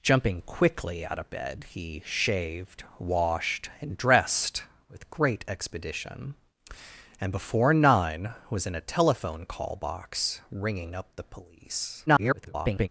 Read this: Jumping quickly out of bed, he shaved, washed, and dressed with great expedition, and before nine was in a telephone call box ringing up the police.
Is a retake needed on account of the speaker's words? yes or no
yes